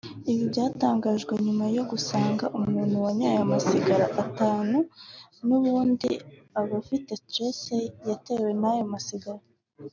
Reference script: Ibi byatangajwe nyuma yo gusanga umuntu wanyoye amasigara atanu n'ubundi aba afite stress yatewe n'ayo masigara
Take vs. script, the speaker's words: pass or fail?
pass